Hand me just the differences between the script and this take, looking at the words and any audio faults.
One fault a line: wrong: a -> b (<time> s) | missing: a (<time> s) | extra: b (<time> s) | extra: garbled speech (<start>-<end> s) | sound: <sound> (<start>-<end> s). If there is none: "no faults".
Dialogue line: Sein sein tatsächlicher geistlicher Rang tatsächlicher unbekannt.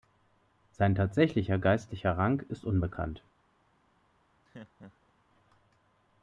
missing: sein (0.9 s)
wrong: tatsächlicher -> ist (2.5 s)
sound: laugh (4.4-5.1 s)